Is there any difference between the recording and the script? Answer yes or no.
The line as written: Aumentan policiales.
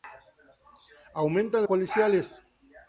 no